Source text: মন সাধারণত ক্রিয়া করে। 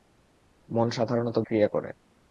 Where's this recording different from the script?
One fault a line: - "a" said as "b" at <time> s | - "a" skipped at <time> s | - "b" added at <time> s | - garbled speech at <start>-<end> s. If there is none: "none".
none